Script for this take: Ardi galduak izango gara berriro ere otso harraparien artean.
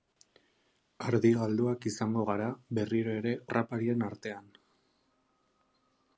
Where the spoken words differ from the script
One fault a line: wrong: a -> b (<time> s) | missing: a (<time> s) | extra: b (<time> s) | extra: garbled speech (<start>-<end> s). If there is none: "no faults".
missing: otso (3.3 s)